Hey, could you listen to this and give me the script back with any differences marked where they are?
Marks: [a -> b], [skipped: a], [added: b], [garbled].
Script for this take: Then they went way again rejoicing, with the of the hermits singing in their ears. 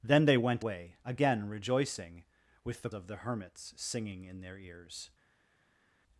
Then they went way again rejoicing, with the of the hermits singing in their ears.